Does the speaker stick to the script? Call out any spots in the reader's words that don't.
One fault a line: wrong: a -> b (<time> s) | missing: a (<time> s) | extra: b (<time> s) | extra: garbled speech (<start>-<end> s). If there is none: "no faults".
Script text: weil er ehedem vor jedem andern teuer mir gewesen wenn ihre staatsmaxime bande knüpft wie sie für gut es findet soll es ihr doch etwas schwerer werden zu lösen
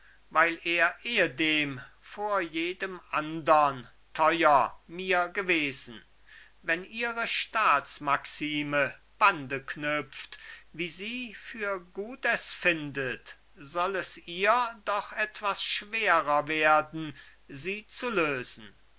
extra: sie (17.5 s)